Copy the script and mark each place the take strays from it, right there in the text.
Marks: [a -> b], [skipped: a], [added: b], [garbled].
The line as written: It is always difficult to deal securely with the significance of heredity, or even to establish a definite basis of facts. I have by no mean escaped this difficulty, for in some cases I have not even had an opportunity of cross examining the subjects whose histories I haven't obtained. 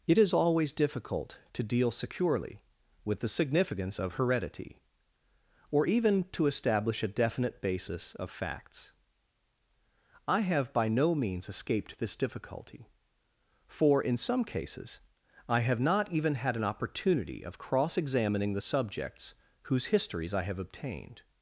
It is always difficult to deal securely with the significance of heredity, or even to establish a definite basis of facts. I have by no [mean -> means] escaped this difficulty, for in some cases I have not even had an opportunity of cross examining the subjects whose histories I [haven't -> have] obtained.